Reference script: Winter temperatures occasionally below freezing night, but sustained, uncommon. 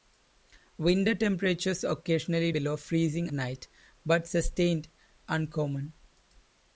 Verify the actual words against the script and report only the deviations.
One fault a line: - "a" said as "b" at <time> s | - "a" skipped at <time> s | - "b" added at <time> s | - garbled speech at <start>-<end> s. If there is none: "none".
none